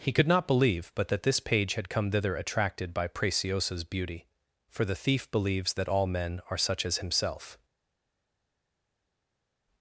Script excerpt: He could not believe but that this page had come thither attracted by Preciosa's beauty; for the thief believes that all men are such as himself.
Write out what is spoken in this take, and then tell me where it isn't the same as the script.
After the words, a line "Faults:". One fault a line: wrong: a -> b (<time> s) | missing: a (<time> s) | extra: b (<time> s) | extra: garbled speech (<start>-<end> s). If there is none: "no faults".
He could not believe but that this page had come thither attracted by Preciosa's beauty; for the thief believes that all men are such as himself.
Faults:
no faults